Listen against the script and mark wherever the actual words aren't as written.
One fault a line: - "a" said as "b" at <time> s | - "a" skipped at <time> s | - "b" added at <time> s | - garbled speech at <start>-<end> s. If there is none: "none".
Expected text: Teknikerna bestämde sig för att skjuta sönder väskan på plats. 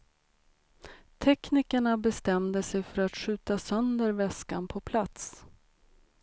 none